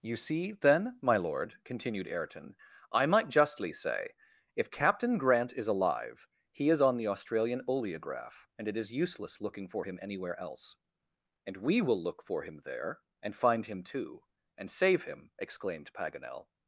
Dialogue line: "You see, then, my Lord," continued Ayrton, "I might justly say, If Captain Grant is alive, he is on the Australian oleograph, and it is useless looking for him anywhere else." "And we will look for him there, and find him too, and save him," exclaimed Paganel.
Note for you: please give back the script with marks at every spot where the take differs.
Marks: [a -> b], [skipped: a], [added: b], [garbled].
"You see, then, my Lord," continued Ayrton, "I might justly say, If Captain Grant is alive, he is on the Australian oleograph, and it is useless looking for him anywhere else." "And we will look for him there, and find him too, and save him," exclaimed Paganel.